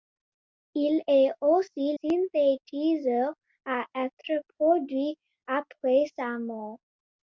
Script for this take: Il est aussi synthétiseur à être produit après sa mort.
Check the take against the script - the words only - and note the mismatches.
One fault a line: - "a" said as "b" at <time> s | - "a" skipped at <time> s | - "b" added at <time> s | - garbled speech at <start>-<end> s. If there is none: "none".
none